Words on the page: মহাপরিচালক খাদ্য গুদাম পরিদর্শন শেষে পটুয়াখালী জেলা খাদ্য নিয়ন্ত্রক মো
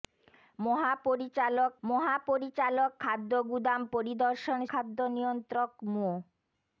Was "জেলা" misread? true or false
true